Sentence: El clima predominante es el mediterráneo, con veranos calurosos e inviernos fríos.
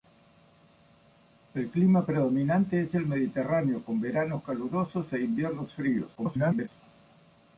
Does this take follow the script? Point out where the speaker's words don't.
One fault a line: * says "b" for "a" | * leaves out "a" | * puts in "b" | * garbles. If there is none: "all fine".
* garbles